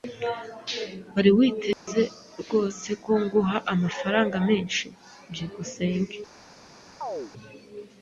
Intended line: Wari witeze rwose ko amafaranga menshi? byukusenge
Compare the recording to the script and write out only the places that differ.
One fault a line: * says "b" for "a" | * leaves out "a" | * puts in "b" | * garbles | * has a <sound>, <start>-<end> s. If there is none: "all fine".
* has a dropout, 1.7-1.9 s
* puts in "nguha"
* has a chirp, 7.0-7.3 s